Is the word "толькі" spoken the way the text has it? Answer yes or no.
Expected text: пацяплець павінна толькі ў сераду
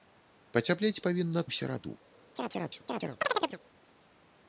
no